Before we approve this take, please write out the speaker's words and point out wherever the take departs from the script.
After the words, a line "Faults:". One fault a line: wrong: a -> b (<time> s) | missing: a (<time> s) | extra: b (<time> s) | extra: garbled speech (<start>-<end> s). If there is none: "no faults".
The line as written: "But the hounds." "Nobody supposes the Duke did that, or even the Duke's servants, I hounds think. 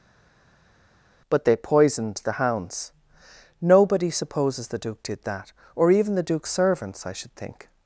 "But they poisoned the hounds." "Nobody supposes the Duke did that, or even the Duke's servants, I should think.
Faults:
extra: they poisoned (1.4 s)
wrong: hounds -> should (7.1 s)